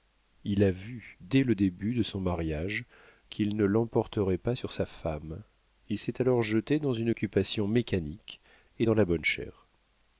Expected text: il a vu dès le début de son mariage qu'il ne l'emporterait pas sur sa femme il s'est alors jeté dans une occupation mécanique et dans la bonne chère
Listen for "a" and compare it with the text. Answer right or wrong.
right